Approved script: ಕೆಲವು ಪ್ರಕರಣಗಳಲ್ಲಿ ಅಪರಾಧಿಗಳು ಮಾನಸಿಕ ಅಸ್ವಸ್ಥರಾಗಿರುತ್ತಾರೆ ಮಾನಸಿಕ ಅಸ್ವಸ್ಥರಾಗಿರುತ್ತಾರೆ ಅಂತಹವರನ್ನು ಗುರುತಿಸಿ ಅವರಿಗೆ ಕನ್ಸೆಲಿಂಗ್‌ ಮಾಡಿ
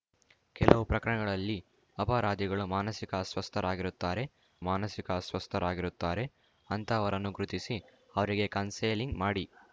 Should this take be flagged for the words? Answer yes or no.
no